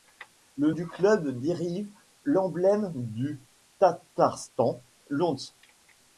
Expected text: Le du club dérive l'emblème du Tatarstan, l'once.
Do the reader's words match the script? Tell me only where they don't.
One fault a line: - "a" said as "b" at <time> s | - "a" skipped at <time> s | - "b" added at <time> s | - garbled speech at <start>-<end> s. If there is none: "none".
none